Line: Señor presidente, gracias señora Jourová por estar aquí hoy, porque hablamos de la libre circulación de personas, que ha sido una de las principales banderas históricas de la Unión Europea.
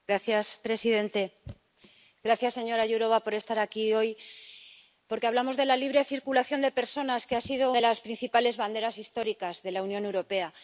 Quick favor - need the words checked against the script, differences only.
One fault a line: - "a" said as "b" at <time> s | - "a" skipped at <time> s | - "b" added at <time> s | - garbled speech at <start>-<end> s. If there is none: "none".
- "una" skipped at 7.7 s